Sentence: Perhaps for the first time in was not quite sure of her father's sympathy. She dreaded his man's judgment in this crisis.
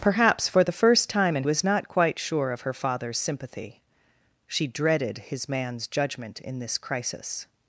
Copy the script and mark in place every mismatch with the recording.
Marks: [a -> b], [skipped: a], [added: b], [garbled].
Perhaps for the first time in was not quite sure of her father's sympathy. She dreaded his man's judgment in this crisis.